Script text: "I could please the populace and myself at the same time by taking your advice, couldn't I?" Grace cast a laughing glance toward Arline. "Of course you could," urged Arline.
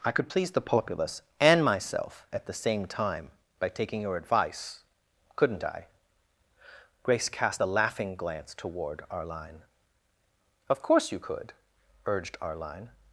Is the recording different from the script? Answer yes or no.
no